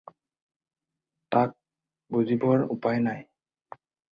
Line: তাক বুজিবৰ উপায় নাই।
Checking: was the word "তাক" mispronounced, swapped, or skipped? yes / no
no